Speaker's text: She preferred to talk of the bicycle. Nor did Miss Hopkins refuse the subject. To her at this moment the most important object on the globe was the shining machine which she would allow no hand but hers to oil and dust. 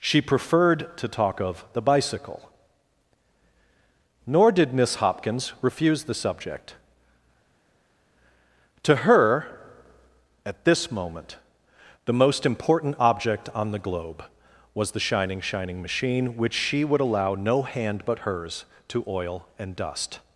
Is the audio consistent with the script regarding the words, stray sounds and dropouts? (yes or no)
no